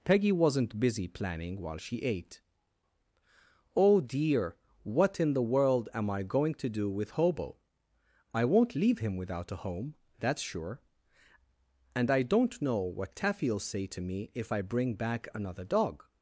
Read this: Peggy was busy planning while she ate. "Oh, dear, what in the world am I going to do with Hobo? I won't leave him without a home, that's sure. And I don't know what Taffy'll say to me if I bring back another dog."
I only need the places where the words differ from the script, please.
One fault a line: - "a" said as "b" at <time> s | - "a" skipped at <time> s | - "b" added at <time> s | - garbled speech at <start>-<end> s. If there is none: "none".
- "was" said as "wasn't" at 0.3 s